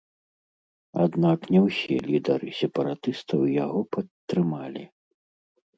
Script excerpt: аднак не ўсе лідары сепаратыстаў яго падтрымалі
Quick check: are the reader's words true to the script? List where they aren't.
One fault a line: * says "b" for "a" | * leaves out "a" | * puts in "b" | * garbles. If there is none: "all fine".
all fine